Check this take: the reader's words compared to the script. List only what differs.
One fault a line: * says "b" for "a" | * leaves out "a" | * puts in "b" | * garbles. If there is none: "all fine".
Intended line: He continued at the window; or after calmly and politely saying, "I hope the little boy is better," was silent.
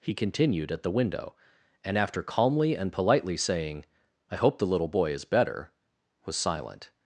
* says "and" for "or"